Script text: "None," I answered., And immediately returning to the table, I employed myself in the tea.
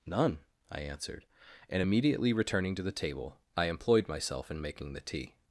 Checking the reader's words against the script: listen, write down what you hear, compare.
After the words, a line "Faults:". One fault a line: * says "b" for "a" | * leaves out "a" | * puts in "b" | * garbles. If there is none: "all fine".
"None," I answered., And immediately returning to the table, I employed myself in making the tea.
Faults:
* puts in "making"